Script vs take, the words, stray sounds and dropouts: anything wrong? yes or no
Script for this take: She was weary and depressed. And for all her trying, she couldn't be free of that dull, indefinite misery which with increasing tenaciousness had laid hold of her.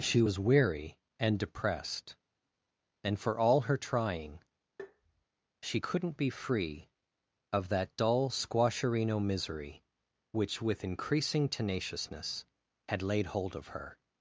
yes